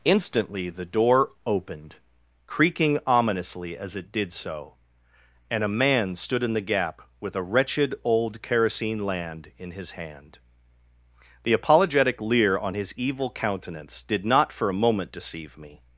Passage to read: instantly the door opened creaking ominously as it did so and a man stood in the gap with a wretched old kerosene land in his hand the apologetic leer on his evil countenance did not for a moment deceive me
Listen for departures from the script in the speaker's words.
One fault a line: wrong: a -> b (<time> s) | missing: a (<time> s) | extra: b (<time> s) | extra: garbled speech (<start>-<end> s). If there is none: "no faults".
no faults